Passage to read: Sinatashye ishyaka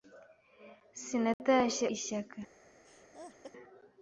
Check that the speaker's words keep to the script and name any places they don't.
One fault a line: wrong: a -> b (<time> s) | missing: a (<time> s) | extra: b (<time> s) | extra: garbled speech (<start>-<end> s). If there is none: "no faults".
no faults